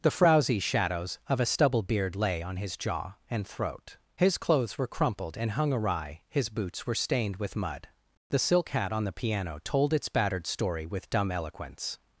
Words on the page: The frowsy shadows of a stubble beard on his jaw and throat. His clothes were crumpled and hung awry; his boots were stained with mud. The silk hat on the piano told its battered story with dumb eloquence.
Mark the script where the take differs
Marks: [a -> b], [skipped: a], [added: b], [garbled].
The frowsy shadows of a stubble beard [added: lay] on his jaw and throat. His clothes were crumpled and hung awry; his boots were stained with mud. The silk hat on the piano told its battered story with dumb eloquence.